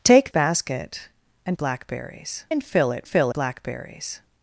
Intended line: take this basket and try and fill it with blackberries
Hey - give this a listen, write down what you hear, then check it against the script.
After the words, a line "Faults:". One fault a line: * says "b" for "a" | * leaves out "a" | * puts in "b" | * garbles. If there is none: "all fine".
take basket and blackberries and fill it fill blackberries
Faults:
* leaves out "this"
* says "blackberries" for "try"
* says "fill" for "with"